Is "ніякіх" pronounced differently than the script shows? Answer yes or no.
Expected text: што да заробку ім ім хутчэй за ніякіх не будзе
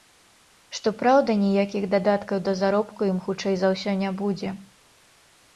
yes